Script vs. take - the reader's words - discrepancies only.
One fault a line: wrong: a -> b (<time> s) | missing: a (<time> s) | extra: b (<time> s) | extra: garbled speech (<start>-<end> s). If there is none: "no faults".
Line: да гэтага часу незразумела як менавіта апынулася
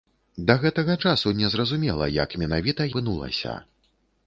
no faults